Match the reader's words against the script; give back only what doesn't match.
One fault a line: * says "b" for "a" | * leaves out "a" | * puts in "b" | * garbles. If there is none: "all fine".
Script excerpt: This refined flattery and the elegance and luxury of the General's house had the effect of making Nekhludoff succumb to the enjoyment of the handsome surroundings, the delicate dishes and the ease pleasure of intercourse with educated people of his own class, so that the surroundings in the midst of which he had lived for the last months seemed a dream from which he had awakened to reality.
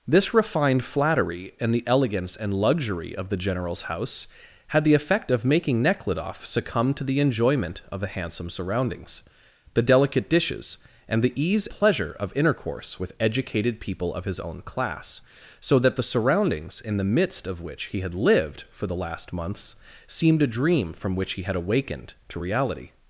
all fine